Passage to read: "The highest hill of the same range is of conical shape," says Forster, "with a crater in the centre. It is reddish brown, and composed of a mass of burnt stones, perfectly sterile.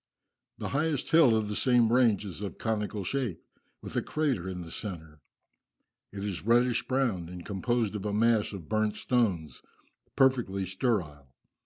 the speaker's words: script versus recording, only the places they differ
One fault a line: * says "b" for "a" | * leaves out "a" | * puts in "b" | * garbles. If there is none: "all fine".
* leaves out "says Forster"